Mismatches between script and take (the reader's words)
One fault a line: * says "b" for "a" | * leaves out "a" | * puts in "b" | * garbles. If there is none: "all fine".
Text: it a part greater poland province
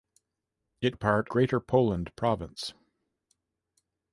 all fine